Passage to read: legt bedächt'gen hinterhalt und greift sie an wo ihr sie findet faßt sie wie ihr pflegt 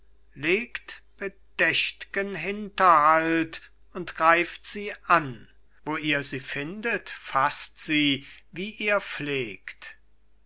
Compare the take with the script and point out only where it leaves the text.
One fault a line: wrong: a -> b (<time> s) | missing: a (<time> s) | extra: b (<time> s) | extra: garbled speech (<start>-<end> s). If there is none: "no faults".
no faults